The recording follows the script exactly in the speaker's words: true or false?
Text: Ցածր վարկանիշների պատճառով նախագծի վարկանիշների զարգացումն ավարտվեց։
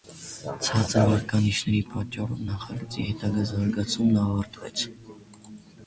false